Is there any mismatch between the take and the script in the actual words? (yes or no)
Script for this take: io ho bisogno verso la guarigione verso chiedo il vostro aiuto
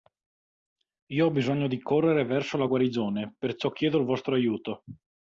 yes